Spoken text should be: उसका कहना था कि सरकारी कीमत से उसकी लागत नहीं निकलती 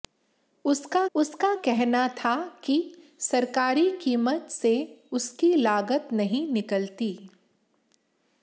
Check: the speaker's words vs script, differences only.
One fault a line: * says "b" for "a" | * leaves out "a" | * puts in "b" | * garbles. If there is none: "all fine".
* puts in "उसका"